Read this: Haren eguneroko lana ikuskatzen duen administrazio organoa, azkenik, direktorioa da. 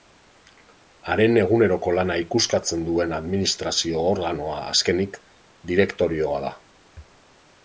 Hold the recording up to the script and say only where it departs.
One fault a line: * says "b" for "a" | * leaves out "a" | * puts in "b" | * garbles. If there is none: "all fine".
all fine